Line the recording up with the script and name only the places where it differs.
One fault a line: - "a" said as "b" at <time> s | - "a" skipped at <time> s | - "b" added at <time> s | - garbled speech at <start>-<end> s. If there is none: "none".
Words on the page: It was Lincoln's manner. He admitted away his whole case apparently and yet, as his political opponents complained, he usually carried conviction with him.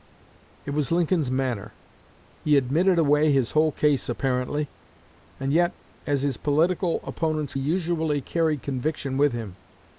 - "complained he" skipped at 7.5 s